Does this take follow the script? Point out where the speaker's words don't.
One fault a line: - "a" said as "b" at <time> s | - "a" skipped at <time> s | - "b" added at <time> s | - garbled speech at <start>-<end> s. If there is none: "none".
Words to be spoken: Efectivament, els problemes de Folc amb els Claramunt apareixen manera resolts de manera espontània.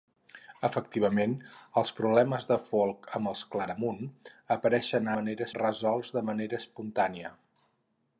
none